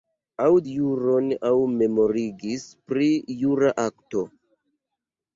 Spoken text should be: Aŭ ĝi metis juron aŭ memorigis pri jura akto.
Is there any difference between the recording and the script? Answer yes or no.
yes